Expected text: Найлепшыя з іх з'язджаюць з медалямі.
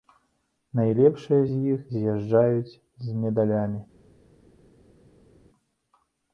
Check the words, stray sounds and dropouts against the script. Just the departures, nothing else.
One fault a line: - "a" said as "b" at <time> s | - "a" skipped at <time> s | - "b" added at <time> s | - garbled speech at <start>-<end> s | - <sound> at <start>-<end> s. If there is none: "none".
none